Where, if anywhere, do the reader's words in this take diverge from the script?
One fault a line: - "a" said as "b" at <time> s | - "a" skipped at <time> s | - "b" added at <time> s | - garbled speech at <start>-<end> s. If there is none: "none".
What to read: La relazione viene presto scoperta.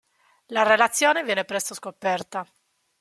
none